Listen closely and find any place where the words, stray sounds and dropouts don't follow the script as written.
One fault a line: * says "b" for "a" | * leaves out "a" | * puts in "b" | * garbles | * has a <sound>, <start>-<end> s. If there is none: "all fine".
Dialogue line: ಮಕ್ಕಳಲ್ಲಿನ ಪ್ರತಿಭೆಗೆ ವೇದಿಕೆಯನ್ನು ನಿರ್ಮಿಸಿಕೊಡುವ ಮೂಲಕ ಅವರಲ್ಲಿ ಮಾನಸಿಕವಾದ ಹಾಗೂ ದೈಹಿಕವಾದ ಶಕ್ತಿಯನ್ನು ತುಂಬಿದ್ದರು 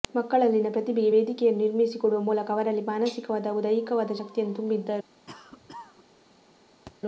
* has a cough, 5.3-6.1 s
* has a thud, 6.9-7.0 s